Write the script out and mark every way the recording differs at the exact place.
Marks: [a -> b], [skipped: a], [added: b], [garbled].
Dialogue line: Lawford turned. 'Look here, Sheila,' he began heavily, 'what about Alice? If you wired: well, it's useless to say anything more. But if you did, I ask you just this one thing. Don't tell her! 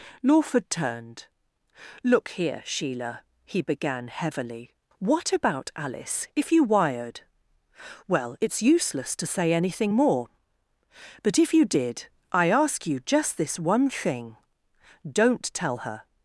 Lawford turned. 'Look here, Sheila,' he began heavily, 'what about Alice? If you wired: well, it's useless to say anything more. But if you did, I ask you just this one thing. Don't tell her!